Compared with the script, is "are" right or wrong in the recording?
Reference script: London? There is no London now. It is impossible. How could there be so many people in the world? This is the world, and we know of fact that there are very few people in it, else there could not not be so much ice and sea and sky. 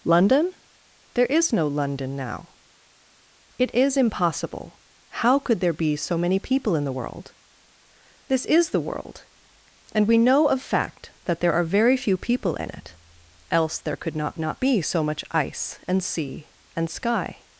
right